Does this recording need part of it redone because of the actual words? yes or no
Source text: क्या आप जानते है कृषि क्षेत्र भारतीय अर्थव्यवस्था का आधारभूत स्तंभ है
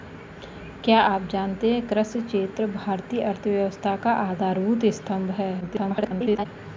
yes